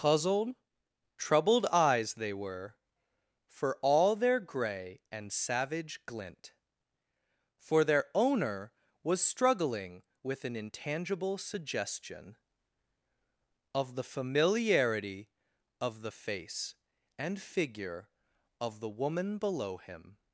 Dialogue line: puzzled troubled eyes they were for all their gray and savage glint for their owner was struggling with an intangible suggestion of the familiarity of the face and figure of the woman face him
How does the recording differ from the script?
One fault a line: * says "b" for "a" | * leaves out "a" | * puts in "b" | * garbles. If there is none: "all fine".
* says "below" for "face"